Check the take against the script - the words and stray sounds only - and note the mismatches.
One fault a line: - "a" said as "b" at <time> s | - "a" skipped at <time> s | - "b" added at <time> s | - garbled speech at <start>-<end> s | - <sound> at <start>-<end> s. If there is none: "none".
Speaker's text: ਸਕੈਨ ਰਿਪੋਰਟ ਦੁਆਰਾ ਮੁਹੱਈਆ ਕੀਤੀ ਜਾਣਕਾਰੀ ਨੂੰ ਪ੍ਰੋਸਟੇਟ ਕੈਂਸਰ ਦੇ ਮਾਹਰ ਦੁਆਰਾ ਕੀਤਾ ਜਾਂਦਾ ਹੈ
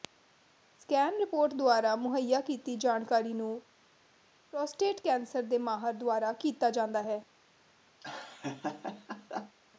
- laugh at 8.0-9.6 s